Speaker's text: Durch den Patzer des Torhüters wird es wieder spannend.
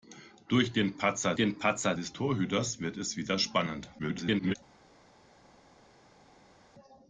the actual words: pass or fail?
fail